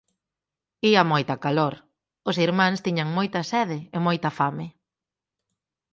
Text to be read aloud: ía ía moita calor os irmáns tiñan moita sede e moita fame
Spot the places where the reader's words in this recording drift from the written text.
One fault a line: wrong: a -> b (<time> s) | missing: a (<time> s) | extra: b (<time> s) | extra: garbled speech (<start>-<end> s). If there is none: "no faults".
missing: ía (1.0 s)